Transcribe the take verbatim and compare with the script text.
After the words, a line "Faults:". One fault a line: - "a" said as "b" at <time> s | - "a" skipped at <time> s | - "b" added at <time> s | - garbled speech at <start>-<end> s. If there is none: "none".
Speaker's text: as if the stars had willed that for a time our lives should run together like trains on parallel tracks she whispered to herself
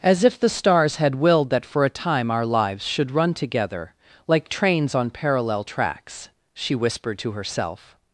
as if the stars had willed that for a time our lives should run together like trains on parallel tracks she whispered to herself
Faults:
none